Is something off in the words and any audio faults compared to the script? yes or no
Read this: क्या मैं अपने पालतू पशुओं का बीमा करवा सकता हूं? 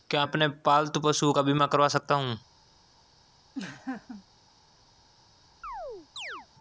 yes